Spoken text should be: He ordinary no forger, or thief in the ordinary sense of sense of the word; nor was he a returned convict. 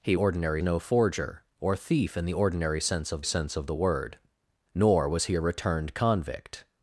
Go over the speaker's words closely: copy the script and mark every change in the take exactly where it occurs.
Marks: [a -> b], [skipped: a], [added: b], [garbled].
He ordinary no forger, or thief in the ordinary sense of sense of the word; nor was he a returned convict.